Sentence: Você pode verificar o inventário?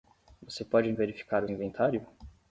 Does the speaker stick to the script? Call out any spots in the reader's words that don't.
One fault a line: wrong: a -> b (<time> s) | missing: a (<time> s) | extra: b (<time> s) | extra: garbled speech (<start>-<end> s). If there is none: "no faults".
no faults